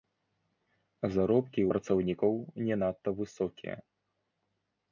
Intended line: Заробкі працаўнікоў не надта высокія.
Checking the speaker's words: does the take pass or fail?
pass